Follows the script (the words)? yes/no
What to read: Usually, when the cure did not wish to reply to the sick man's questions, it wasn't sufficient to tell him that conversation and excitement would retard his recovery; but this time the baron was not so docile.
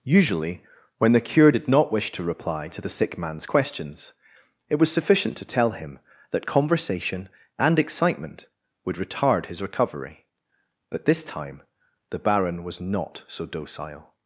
no